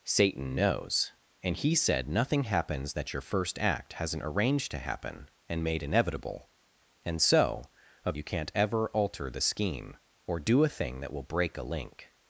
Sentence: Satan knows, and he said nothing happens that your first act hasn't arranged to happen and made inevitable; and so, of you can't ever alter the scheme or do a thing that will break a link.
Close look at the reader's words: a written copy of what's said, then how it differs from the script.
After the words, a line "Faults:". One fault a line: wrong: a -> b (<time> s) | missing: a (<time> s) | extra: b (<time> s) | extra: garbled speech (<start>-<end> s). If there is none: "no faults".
Satan knows, and he said nothing happens that your first act hasn't arranged to happen and made inevitable; and so, of you can't ever alter the scheme or do a thing that will break a link.
Faults:
no faults